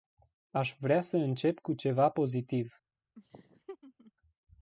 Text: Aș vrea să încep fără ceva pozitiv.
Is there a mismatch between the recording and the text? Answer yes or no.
yes